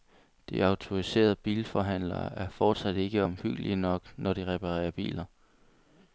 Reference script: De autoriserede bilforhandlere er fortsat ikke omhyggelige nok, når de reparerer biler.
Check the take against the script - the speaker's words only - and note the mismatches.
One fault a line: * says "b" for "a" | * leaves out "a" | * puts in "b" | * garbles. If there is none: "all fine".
all fine